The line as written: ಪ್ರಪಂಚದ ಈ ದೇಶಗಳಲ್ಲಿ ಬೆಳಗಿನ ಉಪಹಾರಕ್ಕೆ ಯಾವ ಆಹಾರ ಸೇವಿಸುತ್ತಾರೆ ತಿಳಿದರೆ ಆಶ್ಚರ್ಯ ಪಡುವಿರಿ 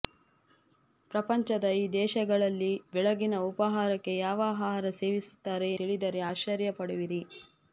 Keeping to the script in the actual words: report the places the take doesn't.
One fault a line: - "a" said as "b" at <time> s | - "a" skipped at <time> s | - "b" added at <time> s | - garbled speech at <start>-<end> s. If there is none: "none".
none